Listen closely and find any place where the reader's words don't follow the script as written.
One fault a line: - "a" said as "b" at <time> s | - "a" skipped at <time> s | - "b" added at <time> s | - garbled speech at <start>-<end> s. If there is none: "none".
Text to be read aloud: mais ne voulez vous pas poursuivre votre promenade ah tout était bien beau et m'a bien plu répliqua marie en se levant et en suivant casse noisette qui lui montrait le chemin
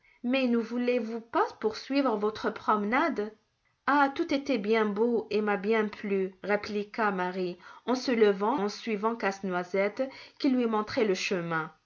- "et" skipped at 8.6 s